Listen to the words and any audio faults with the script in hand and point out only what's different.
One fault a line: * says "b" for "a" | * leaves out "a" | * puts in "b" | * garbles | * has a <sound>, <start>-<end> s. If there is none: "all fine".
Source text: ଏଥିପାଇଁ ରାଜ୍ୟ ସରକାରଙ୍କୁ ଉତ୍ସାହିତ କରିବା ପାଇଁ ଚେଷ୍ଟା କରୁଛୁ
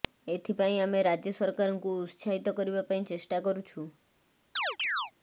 * puts in "ଆମେ"
* has a chirp, 4.6-5.1 s